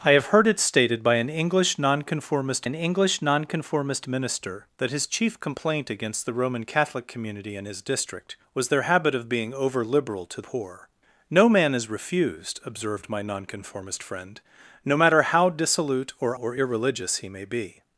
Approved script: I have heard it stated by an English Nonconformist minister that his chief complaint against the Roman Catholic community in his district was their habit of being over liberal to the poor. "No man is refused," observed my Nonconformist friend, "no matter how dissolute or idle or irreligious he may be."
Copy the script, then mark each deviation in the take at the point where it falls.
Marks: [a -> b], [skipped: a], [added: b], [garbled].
I have heard it stated by an English Nonconformist [added: an English Nonconformist] minister that his chief complaint against the Roman Catholic community in his district was their habit of being over liberal to [skipped: the] poor. "No man is refused," observed my Nonconformist friend, "no matter how dissolute or [skipped: idle] or irreligious he may be."